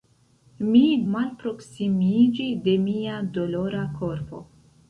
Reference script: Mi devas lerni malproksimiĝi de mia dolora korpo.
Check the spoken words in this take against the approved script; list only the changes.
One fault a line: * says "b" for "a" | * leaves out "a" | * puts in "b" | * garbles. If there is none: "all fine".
* leaves out "devas lerni"